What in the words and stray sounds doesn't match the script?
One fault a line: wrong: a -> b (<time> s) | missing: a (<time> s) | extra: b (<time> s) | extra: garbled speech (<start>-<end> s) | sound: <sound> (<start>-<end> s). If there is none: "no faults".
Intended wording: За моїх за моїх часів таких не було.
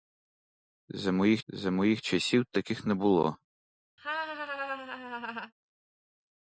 sound: laugh (4.0-5.5 s)